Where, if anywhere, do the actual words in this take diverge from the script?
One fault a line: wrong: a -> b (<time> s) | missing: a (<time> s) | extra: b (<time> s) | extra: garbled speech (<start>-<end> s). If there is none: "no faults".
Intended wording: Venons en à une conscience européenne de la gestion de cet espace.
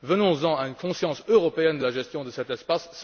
no faults